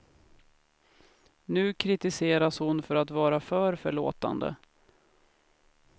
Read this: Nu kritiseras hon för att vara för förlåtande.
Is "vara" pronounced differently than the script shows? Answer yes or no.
no